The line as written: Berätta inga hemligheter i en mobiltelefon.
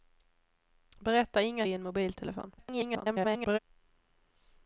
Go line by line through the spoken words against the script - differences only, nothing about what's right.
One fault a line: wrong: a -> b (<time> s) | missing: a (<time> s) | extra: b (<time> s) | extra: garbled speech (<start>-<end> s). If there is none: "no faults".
missing: hemligheter (1.6 s)
extra: garbled speech (2.6-3.6 s)